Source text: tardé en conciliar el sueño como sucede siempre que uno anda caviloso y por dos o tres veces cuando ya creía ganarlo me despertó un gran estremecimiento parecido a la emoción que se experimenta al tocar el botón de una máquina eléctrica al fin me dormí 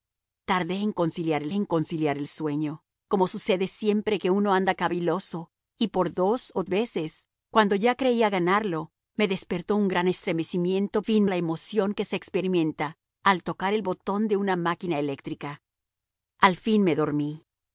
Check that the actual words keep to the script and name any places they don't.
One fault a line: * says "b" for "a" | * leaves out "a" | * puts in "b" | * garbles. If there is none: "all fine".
* puts in "en conciliar el"
* leaves out "tres"
* says "fin" for "parecido"